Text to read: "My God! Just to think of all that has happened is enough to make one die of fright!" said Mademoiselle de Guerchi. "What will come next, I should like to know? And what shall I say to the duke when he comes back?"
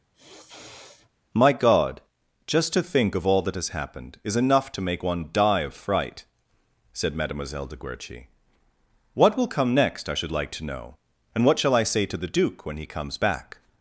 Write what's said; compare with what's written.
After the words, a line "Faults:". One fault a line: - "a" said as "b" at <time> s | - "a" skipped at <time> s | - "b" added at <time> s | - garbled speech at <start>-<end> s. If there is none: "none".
"My God! Just to think of all that has happened is enough to make one die of fright!" said Mademoiselle de Guerchi. "What will come next, I should like to know? And what shall I say to the duke when he comes back?"
Faults:
none